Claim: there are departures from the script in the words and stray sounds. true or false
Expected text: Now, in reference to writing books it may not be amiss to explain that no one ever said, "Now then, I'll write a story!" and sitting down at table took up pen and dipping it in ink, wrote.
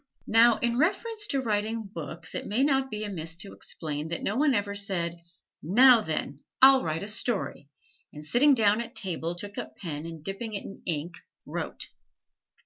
false